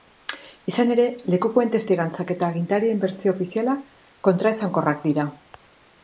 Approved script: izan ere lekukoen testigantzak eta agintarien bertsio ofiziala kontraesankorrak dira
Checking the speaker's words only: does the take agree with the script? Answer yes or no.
yes